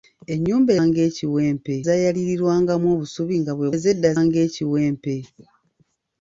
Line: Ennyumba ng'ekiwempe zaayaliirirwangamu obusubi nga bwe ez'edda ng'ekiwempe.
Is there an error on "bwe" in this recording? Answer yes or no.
no